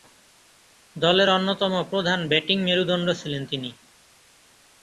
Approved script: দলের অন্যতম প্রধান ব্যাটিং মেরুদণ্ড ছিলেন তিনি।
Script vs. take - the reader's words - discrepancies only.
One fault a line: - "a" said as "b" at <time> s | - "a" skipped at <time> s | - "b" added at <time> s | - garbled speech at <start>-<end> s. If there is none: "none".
none